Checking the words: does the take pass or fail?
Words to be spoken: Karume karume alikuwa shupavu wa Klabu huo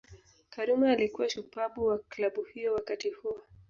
fail